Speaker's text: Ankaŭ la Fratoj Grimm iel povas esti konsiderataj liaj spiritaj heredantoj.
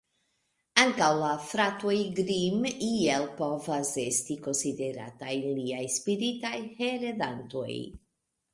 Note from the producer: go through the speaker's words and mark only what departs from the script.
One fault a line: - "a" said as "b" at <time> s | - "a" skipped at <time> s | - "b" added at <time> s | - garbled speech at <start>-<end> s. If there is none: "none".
none